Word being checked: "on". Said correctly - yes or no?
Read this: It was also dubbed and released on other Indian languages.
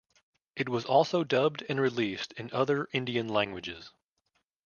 no